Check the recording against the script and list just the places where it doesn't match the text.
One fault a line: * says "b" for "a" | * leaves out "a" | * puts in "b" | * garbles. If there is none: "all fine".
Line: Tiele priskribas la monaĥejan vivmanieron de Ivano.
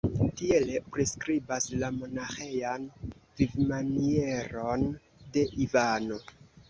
all fine